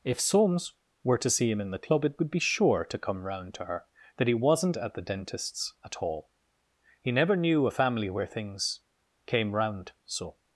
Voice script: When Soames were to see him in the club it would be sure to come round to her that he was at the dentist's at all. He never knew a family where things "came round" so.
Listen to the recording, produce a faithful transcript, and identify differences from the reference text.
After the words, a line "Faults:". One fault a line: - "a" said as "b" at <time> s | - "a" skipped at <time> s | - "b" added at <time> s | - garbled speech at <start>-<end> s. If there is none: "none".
If Soames were to see him in the club it would be sure to come round to her that he wasn't at the dentist's at all. He never knew a family where things "came round" so.
Faults:
- "When" said as "If" at 0.0 s
- "was" said as "wasn't" at 4.3 s